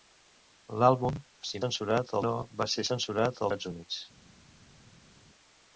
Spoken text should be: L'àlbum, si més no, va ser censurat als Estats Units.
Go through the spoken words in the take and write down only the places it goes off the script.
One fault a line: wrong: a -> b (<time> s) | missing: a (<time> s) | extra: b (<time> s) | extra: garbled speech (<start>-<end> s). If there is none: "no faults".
wrong: més -> censurat (1.7 s)
missing: als (3.5 s)